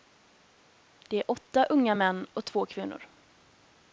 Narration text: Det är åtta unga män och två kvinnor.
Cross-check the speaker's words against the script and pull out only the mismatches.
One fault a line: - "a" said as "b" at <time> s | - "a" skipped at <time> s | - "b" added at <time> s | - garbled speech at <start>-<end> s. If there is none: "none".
none